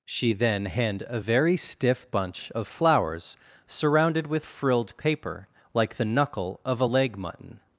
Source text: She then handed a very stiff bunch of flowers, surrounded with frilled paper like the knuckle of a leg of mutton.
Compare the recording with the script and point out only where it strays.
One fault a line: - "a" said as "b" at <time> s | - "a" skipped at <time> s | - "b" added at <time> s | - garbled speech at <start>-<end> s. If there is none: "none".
- "handed" said as "hand" at 0.7 s
- "of" skipped at 7.2 s